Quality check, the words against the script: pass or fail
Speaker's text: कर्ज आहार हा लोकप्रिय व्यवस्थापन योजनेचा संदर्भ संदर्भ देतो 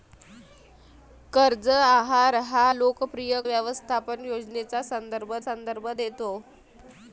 pass